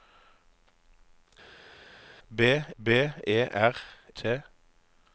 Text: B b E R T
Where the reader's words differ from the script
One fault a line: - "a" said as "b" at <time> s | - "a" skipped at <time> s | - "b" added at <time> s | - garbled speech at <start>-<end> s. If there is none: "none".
none